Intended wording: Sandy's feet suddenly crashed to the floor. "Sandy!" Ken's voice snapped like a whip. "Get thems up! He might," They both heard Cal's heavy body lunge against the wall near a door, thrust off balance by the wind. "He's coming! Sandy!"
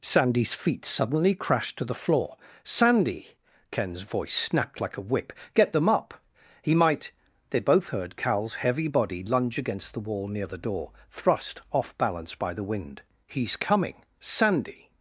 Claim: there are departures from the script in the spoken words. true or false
true